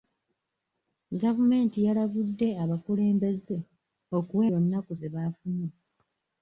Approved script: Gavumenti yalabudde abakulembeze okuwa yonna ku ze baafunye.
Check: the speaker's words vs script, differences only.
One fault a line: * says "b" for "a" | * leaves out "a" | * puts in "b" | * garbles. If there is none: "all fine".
all fine